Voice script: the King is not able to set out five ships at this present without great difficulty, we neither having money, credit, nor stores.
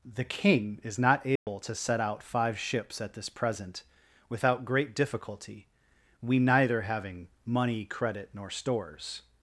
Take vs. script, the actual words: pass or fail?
pass